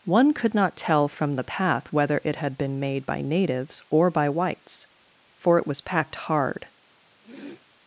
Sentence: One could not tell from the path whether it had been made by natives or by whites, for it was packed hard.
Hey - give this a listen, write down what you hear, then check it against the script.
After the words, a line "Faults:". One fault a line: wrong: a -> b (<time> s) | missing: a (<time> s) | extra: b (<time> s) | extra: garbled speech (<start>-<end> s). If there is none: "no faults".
One could not tell from the path whether it had been made by natives or by whites, for it was packed hard.
Faults:
no faults